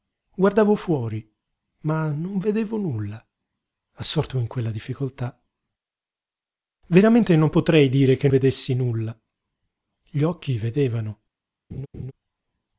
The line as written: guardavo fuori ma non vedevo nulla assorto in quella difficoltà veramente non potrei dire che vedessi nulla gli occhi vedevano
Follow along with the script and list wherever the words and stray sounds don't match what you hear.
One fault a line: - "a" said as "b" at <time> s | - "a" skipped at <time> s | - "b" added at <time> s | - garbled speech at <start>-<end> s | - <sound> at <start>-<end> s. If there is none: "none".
- laugh at 11.7-12.1 s